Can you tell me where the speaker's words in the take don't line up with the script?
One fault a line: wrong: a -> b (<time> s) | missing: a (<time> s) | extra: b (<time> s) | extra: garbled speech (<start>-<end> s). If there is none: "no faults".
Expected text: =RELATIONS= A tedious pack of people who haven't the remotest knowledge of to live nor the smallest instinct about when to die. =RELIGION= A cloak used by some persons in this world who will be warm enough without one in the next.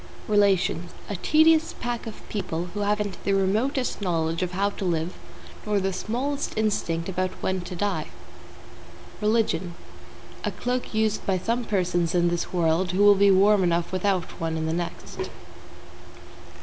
extra: how (4.5 s)